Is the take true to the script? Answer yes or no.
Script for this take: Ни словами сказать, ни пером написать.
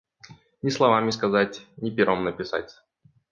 yes